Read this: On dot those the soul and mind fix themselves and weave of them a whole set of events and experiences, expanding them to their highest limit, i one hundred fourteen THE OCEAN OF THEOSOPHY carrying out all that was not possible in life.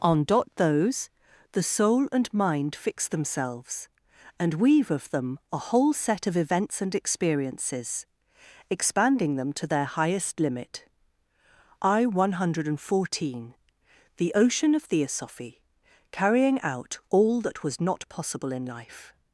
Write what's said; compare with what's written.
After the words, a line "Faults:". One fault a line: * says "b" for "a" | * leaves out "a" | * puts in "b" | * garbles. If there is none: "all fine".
On dot those the soul and mind fix themselves and weave of them a whole set of events and experiences, expanding them to their highest limit, i one hundred fourteen THE OCEAN OF THEOSOPHY carrying out all that was not possible in life.
Faults:
all fine